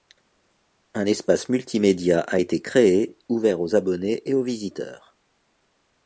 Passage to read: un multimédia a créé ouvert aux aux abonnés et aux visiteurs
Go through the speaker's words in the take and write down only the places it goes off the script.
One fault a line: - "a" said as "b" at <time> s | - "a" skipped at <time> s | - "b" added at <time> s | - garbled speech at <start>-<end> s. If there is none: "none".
- "espace" added at 1.1 s
- "été" added at 2.4 s
- "aux" skipped at 3.8 s